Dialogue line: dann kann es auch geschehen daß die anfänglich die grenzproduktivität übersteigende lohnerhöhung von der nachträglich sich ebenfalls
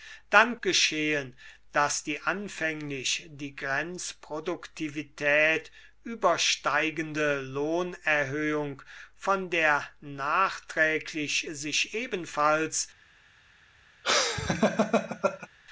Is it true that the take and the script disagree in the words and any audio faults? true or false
true